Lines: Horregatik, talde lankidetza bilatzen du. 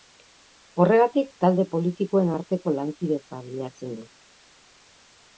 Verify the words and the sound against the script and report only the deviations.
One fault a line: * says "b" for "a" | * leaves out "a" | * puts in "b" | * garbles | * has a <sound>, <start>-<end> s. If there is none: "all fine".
* puts in "politikoen arteko"